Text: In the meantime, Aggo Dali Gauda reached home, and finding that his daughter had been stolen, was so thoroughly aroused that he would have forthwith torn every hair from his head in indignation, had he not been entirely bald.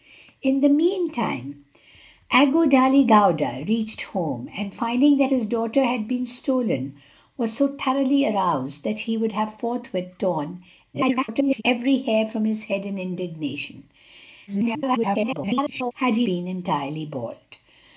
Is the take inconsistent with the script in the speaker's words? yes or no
yes